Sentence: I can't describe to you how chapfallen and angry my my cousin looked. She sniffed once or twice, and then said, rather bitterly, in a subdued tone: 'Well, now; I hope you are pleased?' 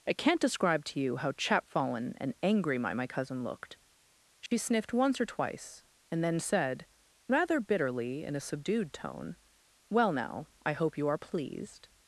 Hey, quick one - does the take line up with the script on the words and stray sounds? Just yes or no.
no